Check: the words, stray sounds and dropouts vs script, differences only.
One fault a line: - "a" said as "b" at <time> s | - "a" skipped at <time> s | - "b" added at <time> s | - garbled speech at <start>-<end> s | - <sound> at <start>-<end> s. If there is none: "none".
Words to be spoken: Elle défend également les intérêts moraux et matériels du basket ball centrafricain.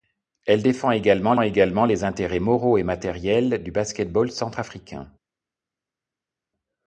- "également" added at 1.4 s